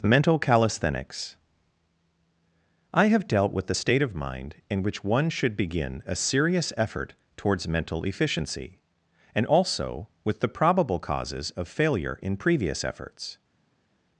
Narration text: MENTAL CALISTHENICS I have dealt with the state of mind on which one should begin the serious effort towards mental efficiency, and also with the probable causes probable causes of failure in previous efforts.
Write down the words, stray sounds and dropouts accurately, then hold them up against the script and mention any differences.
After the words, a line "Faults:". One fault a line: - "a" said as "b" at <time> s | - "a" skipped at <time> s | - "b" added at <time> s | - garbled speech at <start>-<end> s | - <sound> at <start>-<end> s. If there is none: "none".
MENTAL CALISTHENICS I have dealt with the state of mind in which one should begin a serious effort towards mental efficiency, and also with the probable causes of failure in previous efforts.
Faults:
- "on" said as "in" at 4.7 s
- "the" said as "a" at 6.0 s
- "probable causes" skipped at 11.5 s